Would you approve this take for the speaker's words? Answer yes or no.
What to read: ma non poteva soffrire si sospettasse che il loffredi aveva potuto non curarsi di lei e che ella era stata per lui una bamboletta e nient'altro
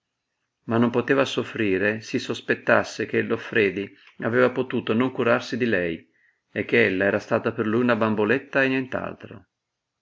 yes